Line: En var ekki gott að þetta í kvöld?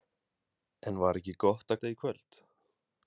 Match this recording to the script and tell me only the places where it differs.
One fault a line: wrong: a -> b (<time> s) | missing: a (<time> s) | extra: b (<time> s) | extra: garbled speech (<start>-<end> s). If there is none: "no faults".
no faults